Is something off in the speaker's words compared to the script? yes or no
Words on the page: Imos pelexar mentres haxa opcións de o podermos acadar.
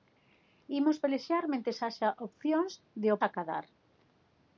yes